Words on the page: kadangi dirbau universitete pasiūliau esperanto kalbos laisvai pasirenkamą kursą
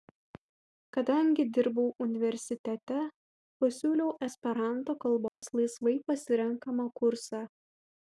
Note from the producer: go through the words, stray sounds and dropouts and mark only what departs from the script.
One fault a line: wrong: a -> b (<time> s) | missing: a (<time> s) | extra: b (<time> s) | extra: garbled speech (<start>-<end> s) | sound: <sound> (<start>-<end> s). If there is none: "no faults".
sound: dropout (5.3-5.4 s)